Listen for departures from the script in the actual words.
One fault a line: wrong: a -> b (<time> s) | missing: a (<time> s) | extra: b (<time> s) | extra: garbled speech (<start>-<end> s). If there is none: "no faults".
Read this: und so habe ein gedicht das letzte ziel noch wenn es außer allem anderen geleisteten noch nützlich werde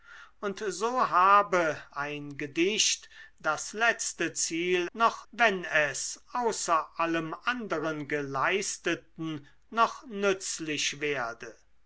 no faults